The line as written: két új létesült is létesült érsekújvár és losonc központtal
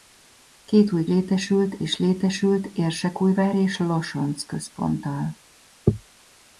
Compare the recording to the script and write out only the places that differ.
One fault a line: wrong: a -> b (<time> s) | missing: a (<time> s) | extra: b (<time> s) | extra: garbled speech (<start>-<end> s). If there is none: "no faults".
no faults